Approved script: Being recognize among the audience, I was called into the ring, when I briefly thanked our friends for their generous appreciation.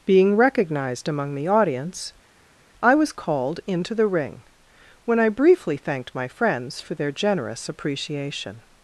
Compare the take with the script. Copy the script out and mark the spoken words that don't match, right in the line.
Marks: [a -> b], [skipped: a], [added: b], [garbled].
Being [recognize -> recognized] among the audience, I was called into the ring, when I briefly thanked [our -> my] friends for their generous appreciation.